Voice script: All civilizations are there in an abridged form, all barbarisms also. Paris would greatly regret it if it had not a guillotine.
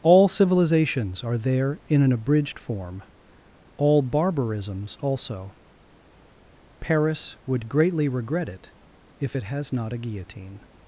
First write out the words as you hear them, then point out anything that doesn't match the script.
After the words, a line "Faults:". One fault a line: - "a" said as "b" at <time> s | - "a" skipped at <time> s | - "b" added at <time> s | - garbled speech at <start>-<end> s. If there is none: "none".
All civilizations are there in an abridged form, all barbarisms also. Paris would greatly regret it if it has not a guillotine.
Faults:
- "had" said as "has" at 9.4 s